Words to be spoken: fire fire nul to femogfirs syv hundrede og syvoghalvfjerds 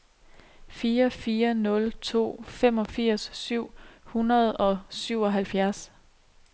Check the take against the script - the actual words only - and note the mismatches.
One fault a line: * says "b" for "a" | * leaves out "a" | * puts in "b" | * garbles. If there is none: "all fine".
all fine